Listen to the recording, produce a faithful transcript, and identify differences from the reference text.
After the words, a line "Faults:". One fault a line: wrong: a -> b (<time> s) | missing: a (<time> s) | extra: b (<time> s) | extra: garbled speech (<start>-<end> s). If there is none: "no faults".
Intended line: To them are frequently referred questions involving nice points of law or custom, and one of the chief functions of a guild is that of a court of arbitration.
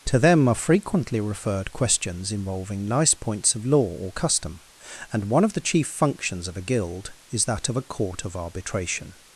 To them are frequently referred questions involving nice points of law or custom, and one of the chief functions of a guild is that of a court of arbitration.
Faults:
no faults